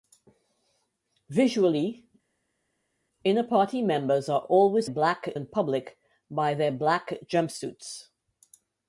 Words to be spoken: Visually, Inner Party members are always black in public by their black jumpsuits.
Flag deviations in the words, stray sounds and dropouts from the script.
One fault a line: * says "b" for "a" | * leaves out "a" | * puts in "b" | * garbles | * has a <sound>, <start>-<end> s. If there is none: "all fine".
all fine